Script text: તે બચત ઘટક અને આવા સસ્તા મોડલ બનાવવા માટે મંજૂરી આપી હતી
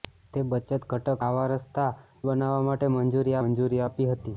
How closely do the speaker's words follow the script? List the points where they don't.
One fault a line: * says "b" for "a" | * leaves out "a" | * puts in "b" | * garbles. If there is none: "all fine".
* leaves out "અને"
* leaves out "મોડલ"
* puts in "મંજૂરી"